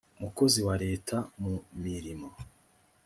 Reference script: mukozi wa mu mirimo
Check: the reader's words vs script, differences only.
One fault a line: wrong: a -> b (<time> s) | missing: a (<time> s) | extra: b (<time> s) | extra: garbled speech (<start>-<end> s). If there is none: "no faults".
extra: leta (0.8 s)